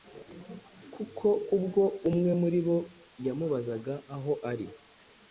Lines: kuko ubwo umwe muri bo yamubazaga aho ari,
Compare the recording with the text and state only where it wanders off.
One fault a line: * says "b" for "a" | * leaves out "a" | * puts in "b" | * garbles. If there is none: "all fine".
all fine